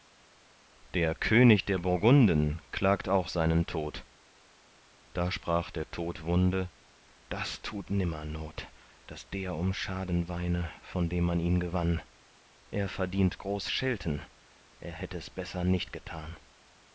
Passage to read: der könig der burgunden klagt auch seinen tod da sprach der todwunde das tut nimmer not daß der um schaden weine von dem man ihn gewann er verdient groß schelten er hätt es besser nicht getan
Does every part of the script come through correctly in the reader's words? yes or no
yes